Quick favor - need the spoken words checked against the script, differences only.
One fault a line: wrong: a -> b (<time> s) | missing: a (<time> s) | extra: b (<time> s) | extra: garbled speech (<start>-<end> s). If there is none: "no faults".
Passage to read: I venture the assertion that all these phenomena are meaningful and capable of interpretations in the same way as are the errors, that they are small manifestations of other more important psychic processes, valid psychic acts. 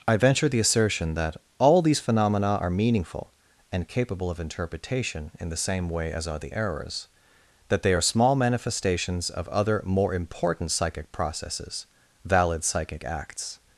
wrong: interpretations -> interpretation (4.4 s)